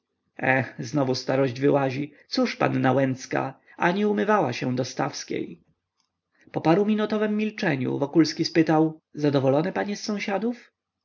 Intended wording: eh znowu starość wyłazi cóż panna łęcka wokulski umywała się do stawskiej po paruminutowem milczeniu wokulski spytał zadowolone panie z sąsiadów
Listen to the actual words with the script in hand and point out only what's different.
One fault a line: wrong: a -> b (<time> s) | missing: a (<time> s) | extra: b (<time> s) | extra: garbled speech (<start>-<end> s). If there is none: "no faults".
wrong: wokulski -> ani (3.8 s)